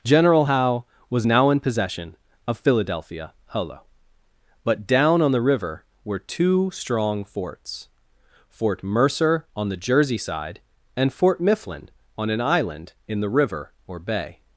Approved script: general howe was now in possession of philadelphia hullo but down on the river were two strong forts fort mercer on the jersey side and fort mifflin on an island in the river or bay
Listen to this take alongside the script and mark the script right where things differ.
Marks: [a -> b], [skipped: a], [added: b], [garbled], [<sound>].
general howe was now in possession of philadelphia hullo but down on the river were two strong forts fort mercer on the jersey side and fort mifflin on an island in the river or bay